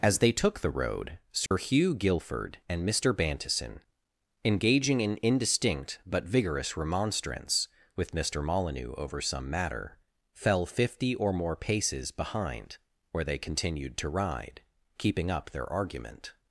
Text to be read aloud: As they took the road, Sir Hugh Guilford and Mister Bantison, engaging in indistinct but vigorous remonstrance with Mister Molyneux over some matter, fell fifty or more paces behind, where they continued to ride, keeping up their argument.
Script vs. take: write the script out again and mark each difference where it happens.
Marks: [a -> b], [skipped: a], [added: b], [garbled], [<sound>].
As they took the road, Sir [dropout] Hugh Guilford and Mister Bantison, engaging in indistinct but vigorous remonstrance with Mister Molyneux over some matter, fell fifty or more paces behind, where they continued to ride, keeping up their argument.